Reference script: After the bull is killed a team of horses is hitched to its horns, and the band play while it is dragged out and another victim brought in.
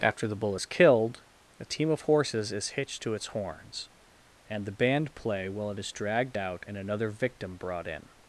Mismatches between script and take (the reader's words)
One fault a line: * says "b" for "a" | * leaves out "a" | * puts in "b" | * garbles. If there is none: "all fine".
all fine